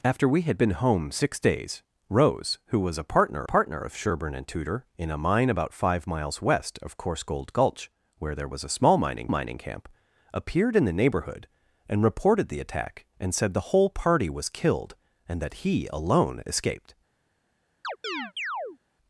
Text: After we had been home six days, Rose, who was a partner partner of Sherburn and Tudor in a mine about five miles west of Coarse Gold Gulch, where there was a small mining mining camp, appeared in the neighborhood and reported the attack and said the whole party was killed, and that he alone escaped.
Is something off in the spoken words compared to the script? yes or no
no